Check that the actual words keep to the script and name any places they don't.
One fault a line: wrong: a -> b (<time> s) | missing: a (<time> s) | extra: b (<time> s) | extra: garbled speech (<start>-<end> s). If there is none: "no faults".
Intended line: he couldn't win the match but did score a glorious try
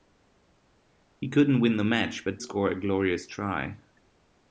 missing: did (2.4 s)